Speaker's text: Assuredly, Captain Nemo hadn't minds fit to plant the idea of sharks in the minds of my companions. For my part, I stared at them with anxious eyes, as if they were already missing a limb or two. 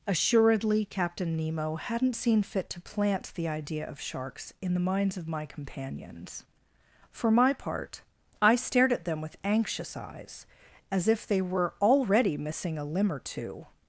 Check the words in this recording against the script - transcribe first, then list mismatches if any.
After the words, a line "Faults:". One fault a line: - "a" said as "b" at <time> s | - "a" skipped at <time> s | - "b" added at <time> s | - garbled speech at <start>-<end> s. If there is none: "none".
Assuredly, Captain Nemo hadn't seen fit to plant the idea of sharks in the minds of my companions. For my part, I stared at them with anxious eyes, as if they were already missing a limb or two.
Faults:
- "minds" said as "seen" at 2.1 s